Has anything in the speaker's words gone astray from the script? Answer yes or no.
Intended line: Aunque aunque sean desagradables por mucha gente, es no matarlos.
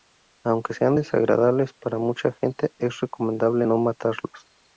yes